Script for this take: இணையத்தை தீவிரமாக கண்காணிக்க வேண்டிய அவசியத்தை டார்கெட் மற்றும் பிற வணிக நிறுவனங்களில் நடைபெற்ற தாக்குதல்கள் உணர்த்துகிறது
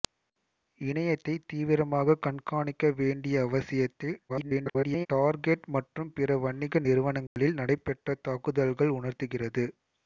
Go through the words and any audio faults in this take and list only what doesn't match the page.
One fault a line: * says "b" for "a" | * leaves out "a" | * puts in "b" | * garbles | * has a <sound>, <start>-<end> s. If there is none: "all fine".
* garbles
* has a dropout, 7.3-7.4 s